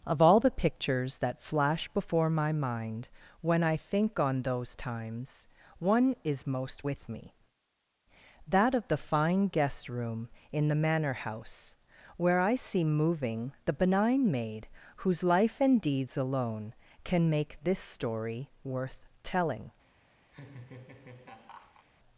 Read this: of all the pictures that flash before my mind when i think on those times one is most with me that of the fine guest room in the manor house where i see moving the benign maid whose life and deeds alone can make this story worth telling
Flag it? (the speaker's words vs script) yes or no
no